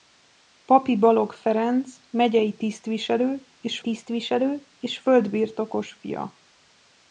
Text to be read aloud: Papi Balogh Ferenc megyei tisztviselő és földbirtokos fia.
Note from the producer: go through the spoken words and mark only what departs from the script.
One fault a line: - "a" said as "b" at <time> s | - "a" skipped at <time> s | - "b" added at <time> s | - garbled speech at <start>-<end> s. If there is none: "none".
- "tisztviselő és" added at 3.8 s